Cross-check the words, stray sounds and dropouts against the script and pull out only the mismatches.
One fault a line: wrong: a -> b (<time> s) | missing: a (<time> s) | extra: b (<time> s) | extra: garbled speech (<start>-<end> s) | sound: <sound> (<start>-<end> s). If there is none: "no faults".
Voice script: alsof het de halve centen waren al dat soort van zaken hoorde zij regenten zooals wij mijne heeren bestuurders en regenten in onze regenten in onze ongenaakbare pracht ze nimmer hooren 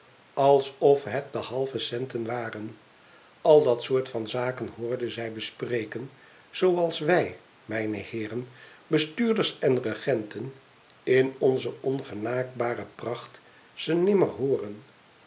wrong: regenten -> bespreken (5.3 s)
missing: regenten in onze (11.8 s)